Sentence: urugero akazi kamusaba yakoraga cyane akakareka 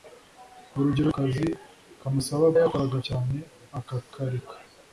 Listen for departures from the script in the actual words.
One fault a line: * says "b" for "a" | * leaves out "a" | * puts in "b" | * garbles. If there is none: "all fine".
all fine